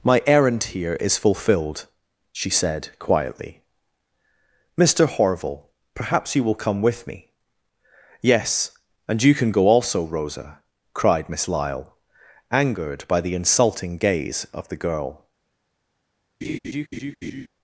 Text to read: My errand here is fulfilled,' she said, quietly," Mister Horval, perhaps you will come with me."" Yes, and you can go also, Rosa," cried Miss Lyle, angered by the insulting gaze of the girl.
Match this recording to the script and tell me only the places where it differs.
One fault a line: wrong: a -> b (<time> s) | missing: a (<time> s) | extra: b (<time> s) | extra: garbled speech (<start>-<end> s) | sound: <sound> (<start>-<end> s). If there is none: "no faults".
sound: laugh (16.4-17.5 s)